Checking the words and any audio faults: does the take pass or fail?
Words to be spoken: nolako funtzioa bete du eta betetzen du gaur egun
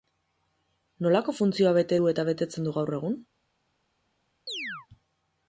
fail